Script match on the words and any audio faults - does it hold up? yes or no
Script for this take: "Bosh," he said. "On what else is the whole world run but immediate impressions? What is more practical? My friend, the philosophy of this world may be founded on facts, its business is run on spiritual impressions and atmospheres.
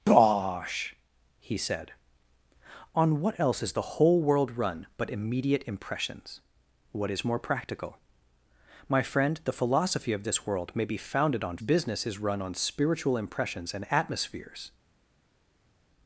no